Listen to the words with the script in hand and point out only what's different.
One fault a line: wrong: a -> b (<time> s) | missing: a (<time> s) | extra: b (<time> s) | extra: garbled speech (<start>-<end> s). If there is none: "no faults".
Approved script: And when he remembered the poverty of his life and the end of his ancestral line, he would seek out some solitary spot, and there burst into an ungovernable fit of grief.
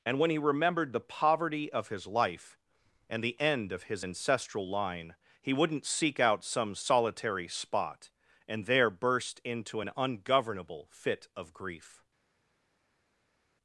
wrong: would -> wouldn't (5.5 s)